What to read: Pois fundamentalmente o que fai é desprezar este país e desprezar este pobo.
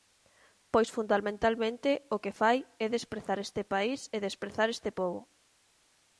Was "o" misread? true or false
false